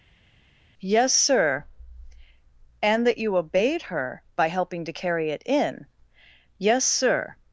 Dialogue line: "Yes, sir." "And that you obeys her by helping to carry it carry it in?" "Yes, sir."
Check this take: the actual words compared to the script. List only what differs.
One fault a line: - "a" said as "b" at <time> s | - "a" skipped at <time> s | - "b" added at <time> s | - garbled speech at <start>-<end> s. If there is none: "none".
- "obeys" said as "obeyed" at 3.4 s
- "carry it" skipped at 5.4 s